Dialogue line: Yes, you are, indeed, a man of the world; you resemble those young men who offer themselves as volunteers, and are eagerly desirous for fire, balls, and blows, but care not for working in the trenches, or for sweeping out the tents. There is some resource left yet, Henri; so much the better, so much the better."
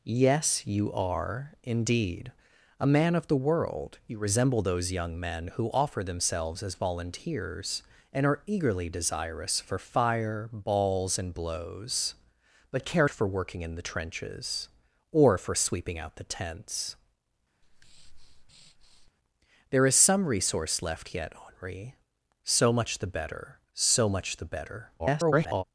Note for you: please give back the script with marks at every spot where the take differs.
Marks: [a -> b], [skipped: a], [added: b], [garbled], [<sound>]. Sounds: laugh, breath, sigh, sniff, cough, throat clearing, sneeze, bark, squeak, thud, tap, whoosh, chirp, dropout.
Yes, you are, indeed, a man of the world; you resemble those young men who offer themselves as volunteers, and are eagerly desirous for fire, balls, and blows, but care [skipped: not] for working in the trenches, or for sweeping out the tents. [breath] There is some resource left yet, Henri; so much the better, so much the better." [garbled]